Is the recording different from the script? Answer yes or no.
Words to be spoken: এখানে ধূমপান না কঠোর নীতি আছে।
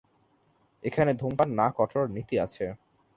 no